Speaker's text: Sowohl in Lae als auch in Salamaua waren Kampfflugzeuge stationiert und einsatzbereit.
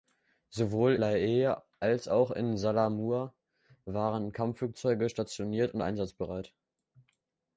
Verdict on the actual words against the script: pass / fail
fail